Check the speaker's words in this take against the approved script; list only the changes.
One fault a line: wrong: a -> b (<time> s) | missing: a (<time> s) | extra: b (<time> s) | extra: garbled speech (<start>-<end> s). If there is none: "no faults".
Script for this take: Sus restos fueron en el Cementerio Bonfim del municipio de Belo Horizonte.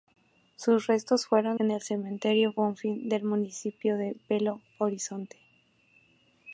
no faults